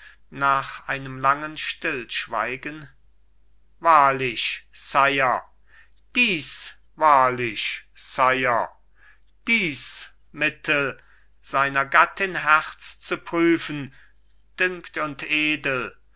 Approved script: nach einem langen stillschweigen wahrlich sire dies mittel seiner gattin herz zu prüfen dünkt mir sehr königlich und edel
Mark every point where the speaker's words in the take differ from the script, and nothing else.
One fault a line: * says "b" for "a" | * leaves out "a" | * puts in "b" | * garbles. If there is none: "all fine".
* puts in "wahrlich sire dies"
* leaves out "mir sehr königlich"